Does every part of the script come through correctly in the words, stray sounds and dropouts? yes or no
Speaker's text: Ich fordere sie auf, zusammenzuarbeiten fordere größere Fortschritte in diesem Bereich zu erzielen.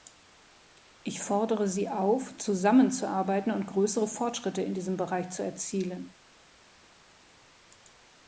no